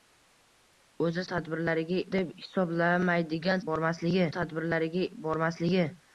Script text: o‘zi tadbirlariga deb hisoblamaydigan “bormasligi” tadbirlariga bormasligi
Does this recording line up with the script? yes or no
yes